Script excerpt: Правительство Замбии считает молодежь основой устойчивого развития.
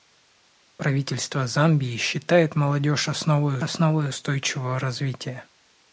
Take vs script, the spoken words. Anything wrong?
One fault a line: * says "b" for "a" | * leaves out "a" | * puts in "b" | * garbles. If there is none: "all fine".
* puts in "основой"